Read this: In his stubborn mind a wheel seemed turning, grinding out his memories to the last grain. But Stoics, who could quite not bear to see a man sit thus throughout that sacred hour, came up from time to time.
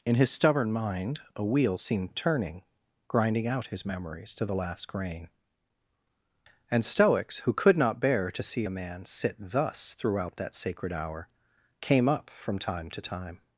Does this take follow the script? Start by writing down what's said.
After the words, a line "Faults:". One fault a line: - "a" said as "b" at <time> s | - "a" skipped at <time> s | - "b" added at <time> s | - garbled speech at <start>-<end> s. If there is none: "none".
In his stubborn mind a wheel seemed turning, grinding out his memories to the last grain. And Stoics, who could not bear to see a man sit thus throughout that sacred hour, came up from time to time.
Faults:
- "But" said as "And" at 6.7 s
- "quite" skipped at 7.8 s